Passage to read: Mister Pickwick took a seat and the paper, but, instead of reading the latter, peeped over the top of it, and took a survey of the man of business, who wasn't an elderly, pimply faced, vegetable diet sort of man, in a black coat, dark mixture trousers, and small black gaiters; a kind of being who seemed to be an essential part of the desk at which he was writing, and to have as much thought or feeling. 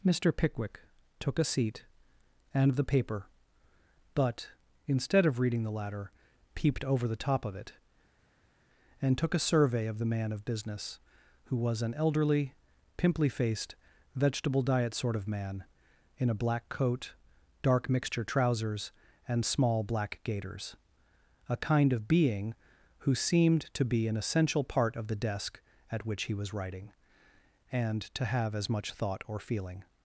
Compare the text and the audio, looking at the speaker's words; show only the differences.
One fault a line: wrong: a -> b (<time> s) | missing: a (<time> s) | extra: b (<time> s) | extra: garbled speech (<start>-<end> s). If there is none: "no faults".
wrong: wasn't -> was (11.6 s)